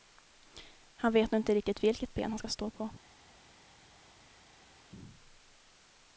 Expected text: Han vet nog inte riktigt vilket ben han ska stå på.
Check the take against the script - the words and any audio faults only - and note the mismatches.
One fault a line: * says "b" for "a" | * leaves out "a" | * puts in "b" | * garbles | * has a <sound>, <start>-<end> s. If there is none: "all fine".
all fine